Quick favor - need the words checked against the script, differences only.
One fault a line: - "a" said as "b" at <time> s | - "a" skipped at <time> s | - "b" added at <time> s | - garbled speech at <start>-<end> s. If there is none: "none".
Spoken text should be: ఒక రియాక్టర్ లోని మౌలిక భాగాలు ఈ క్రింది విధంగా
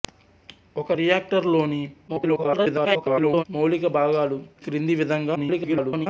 - garbled speech at 2.1-3.4 s
- "ఈ" skipped at 4.4 s
- garbled speech at 5.3-6.1 s